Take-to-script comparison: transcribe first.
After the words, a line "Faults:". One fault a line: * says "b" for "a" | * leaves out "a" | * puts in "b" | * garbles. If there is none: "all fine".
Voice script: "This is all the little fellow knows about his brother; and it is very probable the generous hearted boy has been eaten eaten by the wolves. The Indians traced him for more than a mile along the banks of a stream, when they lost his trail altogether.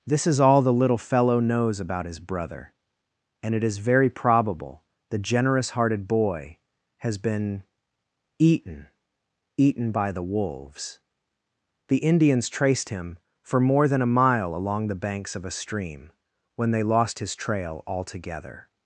"This is all the little fellow knows about his brother; and it is very probable the generous hearted boy has been eaten eaten by the wolves. The Indians traced him for more than a mile along the banks of a stream, when they lost his trail altogether.
Faults:
all fine